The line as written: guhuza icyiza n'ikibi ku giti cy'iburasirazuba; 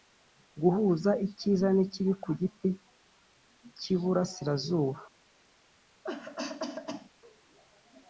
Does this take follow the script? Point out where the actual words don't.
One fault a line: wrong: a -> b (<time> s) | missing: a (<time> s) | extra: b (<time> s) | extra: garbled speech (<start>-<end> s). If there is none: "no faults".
no faults